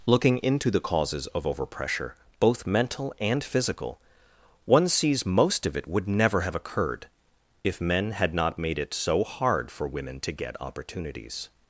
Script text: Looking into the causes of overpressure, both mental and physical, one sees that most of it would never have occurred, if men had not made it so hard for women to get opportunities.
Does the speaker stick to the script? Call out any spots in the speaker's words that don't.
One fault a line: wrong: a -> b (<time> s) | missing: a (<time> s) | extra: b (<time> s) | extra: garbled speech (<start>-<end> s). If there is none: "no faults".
missing: that (5.3 s)